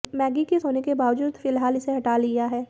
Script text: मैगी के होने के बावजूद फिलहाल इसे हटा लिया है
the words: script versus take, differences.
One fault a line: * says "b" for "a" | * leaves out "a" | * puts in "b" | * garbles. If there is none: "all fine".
all fine